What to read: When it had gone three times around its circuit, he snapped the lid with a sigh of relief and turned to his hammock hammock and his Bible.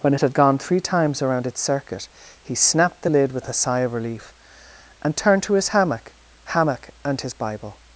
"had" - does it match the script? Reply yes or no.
yes